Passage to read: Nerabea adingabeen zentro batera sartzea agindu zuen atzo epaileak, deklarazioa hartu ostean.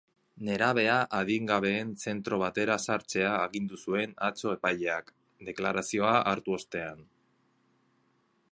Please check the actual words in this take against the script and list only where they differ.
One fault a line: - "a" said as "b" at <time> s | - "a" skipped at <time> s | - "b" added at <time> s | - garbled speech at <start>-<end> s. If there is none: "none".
none